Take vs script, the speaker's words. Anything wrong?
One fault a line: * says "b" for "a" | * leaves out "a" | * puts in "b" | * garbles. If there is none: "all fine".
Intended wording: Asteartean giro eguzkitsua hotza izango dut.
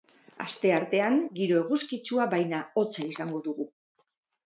* puts in "baina"
* says "dugu" for "dut"